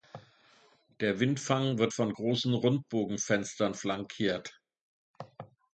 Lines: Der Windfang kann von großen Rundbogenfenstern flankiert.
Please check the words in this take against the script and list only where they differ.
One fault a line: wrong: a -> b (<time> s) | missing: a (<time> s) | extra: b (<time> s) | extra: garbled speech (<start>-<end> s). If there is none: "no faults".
wrong: kann -> wird (1.8 s)